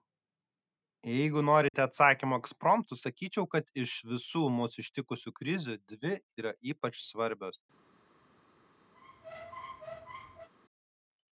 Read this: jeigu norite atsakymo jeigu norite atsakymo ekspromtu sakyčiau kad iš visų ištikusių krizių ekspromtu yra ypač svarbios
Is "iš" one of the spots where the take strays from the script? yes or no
no